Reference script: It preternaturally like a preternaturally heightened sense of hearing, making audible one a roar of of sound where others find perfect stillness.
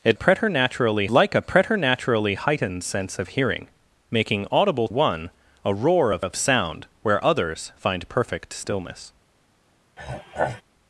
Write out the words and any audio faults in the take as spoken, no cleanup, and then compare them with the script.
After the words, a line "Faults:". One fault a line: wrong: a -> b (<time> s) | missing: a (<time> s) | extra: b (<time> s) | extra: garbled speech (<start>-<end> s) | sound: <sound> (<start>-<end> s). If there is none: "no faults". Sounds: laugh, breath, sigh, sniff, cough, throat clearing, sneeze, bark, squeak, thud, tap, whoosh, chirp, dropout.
It preternaturally like a preternaturally heightened sense of hearing, making audible one a roar of of sound where others find perfect stillness.
Faults:
sound: throat clearing (10.0-10.6 s)